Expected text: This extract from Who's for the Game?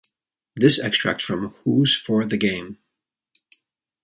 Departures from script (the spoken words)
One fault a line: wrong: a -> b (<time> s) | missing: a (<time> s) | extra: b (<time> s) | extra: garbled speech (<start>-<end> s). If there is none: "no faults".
no faults